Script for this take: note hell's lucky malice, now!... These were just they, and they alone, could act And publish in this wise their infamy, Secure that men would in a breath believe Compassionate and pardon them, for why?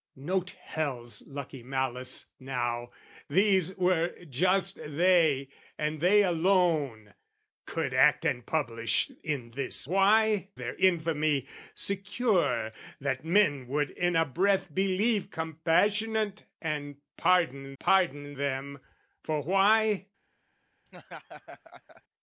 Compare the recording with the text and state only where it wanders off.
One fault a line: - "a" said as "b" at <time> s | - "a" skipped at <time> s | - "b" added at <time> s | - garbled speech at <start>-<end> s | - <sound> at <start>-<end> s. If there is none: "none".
- "wise" said as "why" at 9.9 s
- "pardon" added at 17.8 s
- laugh at 20.9-22.0 s